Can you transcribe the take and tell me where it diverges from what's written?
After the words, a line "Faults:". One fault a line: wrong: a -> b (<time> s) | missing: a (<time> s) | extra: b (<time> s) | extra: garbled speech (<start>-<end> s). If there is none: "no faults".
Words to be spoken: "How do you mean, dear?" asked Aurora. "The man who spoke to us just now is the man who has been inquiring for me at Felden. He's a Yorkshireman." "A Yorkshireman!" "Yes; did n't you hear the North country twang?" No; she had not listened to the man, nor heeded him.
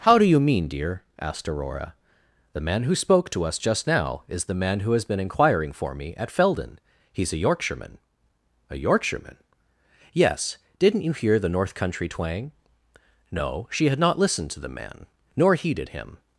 "How do you mean, dear?" asked Aurora. "The man who spoke to us just now is the man who has been inquiring for me at Felden. He's a Yorkshireman." "A Yorkshireman!" "Yes; did n't you hear the North country twang?" No; she had not listened to the man, nor heeded him.
Faults:
no faults